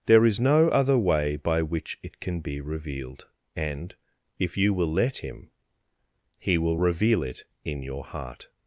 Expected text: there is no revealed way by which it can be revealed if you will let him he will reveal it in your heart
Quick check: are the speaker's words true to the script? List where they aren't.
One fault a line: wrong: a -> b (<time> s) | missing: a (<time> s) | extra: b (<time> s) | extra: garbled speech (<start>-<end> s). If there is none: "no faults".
wrong: revealed -> other (0.7 s)
extra: and (3.5 s)